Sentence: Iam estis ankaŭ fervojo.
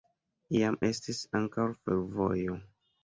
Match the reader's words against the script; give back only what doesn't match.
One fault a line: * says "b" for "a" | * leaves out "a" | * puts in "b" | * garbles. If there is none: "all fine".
all fine